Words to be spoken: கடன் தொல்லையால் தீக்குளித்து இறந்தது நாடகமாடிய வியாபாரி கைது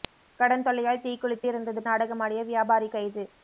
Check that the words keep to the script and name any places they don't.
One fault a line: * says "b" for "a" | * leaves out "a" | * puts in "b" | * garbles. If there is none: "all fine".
all fine